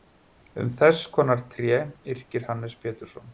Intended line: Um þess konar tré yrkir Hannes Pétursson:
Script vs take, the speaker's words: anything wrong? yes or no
no